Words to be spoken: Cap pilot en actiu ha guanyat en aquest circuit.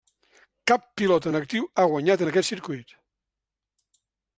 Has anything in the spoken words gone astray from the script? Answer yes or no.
no